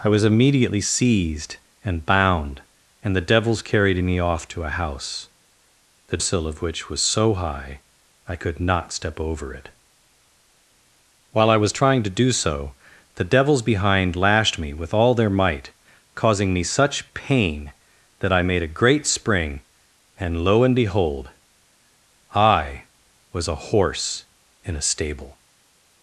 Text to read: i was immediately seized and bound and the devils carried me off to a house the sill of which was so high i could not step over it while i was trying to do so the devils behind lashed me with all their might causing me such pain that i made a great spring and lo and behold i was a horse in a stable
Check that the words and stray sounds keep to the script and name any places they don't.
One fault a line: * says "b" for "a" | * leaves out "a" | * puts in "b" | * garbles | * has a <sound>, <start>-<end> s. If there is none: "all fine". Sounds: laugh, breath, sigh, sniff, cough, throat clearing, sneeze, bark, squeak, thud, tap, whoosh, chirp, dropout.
all fine